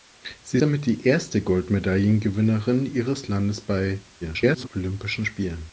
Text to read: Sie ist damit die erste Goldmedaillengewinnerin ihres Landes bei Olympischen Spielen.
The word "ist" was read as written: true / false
false